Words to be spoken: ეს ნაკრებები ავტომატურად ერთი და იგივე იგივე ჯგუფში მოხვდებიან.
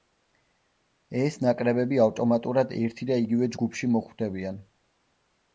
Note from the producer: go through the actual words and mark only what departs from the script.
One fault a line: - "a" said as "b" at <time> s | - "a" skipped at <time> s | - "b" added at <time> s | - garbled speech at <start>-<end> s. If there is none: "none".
- "იგივე" skipped at 3.5 s